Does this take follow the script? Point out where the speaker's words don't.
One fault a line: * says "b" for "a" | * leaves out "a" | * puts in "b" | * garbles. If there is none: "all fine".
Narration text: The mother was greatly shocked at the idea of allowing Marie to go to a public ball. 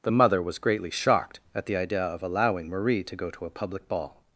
all fine